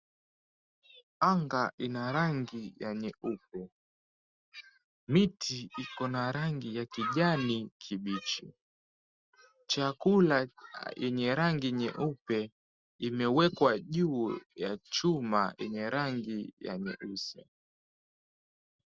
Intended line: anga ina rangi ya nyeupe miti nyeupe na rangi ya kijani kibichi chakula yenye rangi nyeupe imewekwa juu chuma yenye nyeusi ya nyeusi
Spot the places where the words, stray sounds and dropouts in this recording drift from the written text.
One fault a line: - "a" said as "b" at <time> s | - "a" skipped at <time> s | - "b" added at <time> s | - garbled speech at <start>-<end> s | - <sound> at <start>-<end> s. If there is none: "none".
- "nyeupe" said as "iko" at 5.8 s
- "ya" added at 14.5 s
- "nyeusi" said as "rangi" at 15.9 s